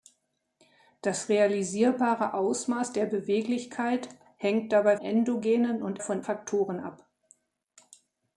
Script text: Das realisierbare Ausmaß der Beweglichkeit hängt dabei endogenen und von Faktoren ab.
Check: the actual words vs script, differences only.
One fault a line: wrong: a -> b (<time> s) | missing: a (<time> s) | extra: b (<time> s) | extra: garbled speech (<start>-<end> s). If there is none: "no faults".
no faults